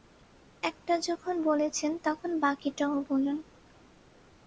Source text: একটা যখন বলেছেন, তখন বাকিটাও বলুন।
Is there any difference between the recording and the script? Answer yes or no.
no